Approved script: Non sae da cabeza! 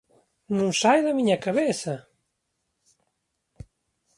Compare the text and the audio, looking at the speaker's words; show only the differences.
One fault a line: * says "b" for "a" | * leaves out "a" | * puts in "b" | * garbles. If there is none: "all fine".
* puts in "miña"